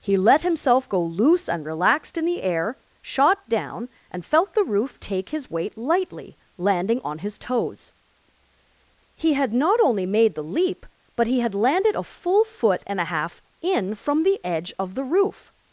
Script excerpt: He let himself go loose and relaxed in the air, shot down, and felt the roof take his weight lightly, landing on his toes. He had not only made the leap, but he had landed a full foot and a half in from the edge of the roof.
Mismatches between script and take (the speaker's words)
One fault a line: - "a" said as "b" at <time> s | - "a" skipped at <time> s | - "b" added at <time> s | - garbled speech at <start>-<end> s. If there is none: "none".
none